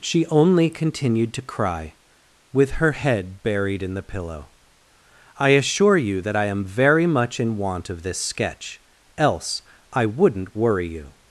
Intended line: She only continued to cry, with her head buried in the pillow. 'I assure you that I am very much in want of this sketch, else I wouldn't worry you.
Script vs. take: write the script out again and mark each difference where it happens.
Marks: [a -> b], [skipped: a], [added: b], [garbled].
She only continued to cry, with her head buried in the pillow. 'I assure you that I am very much in want of this sketch, else I wouldn't worry you.